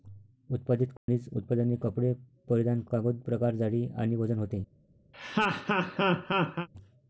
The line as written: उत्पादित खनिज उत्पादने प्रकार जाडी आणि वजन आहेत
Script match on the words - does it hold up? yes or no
no